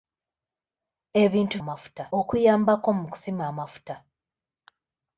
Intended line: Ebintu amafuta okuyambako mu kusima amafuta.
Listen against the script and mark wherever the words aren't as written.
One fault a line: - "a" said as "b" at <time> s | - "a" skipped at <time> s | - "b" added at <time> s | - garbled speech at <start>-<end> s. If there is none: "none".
none